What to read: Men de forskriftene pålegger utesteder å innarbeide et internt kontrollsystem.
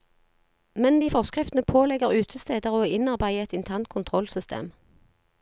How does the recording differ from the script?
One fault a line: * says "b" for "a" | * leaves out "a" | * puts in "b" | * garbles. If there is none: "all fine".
all fine